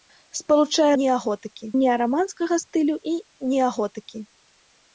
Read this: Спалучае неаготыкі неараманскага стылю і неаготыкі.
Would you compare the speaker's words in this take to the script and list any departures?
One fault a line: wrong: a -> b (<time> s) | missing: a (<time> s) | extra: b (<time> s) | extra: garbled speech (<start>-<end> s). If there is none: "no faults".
no faults